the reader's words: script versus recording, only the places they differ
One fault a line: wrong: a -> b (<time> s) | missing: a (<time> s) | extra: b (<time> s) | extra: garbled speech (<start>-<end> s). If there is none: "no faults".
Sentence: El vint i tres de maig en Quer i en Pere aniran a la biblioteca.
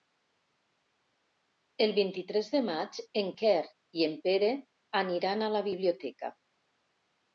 no faults